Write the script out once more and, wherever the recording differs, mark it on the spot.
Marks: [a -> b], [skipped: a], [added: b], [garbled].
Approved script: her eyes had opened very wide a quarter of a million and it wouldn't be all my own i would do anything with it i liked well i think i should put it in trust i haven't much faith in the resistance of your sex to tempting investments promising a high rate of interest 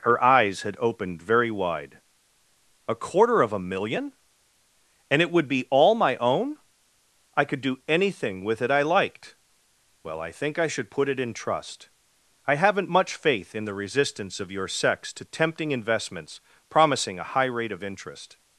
her eyes had opened very wide a quarter of a million and it [wouldn't -> would] be all my own i [would -> could] do anything with it i liked well i think i should put it in trust i haven't much faith in the resistance of your sex to tempting investments promising a high rate of interest